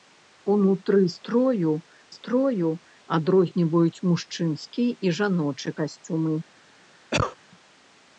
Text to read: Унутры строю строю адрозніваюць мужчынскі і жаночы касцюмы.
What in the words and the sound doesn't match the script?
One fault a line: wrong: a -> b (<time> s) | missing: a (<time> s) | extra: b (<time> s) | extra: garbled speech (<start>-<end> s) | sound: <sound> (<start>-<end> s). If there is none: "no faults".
sound: cough (7.1-7.4 s)